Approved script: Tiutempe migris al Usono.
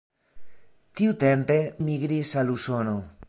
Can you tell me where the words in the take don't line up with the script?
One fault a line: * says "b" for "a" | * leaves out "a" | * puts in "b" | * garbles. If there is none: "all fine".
all fine